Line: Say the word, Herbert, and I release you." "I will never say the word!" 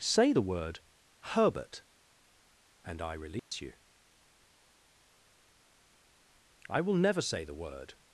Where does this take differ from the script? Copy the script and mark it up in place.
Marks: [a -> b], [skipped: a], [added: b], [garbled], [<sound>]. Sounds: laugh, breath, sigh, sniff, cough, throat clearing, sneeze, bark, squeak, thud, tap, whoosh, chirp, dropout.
Say the word, Herbert, and I release [dropout] you." "I will never say the word!"